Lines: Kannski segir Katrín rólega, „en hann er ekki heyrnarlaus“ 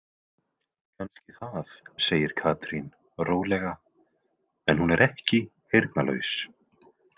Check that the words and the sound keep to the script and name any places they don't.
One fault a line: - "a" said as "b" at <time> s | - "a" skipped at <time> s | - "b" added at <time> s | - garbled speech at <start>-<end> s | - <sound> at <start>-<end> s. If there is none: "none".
- "það" added at 1.4 s
- "hann" said as "hún" at 4.9 s